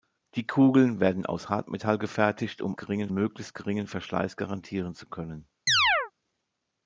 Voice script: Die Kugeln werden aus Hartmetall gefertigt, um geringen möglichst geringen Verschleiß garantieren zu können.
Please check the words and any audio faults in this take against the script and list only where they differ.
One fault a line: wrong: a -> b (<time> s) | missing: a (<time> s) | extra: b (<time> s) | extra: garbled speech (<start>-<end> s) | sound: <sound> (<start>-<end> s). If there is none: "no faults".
sound: chirp (5.7-6.1 s)